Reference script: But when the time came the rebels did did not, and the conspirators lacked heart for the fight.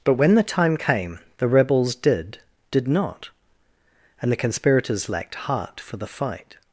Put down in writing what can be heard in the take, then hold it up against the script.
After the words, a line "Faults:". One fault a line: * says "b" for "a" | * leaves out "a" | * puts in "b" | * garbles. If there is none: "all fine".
But when the time came the rebels did did not, and the conspirators lacked heart for the fight.
Faults:
all fine